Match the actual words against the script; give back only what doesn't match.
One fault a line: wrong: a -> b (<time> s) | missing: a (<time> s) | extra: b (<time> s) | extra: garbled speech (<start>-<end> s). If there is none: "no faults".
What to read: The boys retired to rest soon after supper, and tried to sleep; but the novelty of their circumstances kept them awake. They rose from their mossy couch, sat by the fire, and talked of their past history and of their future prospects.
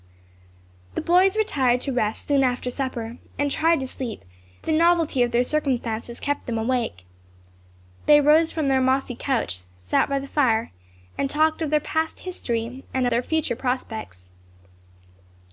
missing: but (4.2 s)
missing: of (13.1 s)